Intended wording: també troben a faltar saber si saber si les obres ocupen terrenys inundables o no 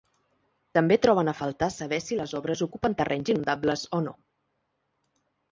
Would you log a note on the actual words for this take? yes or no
yes